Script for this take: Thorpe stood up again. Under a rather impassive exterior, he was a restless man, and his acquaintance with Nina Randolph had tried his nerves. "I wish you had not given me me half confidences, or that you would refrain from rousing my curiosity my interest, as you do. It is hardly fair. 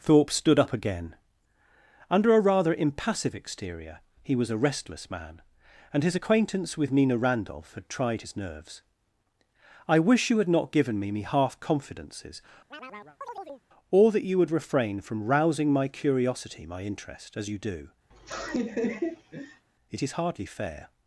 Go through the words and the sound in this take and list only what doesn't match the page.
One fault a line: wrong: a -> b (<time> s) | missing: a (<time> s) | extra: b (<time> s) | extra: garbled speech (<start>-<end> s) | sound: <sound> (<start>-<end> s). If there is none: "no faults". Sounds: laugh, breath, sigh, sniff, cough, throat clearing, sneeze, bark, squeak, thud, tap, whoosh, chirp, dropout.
sound: chirp (12.7-13.6 s)
sound: laugh (18.1-19.7 s)